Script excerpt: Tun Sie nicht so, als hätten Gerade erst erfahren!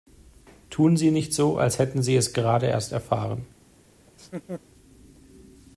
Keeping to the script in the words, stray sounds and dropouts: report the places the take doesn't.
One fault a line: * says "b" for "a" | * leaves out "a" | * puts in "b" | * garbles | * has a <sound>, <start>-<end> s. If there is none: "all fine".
* puts in "Sie es"
* has a laugh, 4.1-4.6 s